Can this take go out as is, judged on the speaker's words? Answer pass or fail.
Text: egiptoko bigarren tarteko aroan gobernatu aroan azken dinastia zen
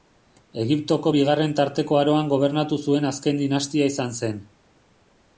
fail